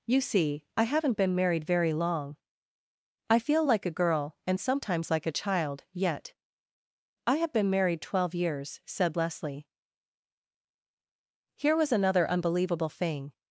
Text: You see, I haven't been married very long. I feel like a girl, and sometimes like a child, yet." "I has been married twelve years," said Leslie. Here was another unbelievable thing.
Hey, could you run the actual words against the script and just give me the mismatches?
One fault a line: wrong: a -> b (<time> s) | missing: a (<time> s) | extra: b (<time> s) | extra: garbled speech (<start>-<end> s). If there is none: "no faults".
wrong: has -> have (7.4 s)